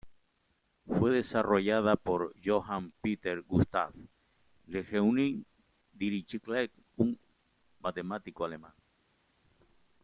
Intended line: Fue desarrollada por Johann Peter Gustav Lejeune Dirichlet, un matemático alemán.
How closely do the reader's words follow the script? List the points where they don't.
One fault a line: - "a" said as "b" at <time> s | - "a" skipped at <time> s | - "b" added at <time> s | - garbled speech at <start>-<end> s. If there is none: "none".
none